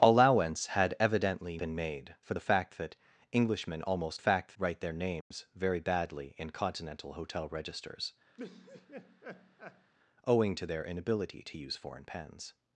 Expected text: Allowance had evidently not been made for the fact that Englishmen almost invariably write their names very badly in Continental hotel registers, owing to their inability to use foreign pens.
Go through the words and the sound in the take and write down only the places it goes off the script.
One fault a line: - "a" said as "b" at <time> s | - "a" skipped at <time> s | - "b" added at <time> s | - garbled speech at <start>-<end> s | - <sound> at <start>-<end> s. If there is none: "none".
- "not" skipped at 1.6 s
- "invariably" said as "fact" at 4.2 s
- dropout at 5.2-5.3 s
- laugh at 8.4-9.9 s